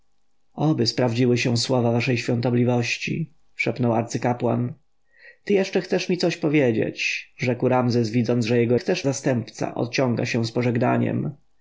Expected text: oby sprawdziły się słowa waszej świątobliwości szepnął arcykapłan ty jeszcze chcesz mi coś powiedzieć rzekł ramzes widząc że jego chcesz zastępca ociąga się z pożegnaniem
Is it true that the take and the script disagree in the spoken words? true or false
false